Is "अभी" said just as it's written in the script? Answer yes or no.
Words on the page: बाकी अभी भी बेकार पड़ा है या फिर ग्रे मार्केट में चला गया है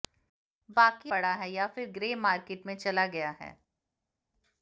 no